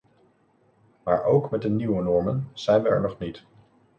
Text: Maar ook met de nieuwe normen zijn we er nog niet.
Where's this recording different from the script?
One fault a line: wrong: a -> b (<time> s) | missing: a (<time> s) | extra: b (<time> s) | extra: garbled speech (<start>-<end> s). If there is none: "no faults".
no faults